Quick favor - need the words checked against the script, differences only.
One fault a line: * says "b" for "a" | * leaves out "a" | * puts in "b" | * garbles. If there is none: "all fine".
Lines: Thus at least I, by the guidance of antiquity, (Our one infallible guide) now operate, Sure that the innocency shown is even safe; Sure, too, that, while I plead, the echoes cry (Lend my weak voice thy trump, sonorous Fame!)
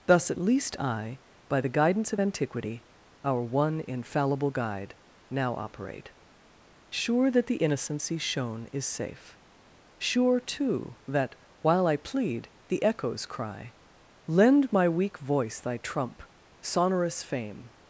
* leaves out "even"